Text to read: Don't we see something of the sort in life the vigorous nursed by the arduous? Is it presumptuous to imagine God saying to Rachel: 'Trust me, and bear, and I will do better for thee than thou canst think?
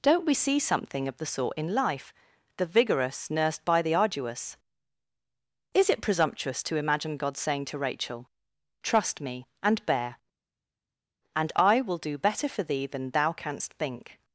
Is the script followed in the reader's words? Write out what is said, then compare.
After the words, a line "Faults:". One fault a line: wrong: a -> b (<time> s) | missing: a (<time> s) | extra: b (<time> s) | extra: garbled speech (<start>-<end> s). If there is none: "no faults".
Don't we see something of the sort in life the vigorous nursed by the arduous? Is it presumptuous to imagine God saying to Rachel: 'Trust me, and bear, and I will do better for thee than thou canst think?
Faults:
no faults